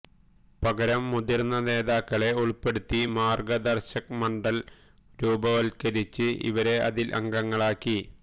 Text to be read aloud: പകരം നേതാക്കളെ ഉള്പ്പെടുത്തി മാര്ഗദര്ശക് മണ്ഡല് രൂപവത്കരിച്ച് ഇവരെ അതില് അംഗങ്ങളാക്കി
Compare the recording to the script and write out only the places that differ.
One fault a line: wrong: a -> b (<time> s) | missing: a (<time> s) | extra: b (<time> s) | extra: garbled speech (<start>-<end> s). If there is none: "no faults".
extra: മുതിര്ന്ന (1.1 s)